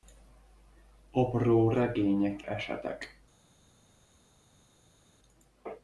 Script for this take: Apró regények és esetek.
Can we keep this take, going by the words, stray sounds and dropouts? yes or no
no